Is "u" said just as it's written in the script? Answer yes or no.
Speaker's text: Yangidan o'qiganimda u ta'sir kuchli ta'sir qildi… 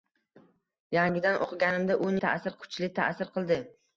yes